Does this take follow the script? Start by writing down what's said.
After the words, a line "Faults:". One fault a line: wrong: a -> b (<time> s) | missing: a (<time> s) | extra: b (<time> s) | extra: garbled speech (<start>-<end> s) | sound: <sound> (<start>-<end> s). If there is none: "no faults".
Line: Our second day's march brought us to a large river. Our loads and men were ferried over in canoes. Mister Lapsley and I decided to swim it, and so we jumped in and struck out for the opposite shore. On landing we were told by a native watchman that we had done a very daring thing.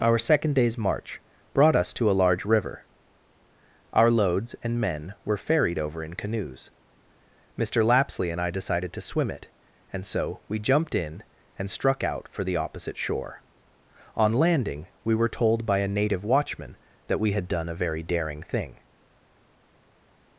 Our second day's march brought us to a large river. Our loads and men were ferried over in canoes. Mister Lapsley and I decided to swim it, and so we jumped in and struck out for the opposite shore. On landing we were told by a native watchman that we had done a very daring thing.
Faults:
no faults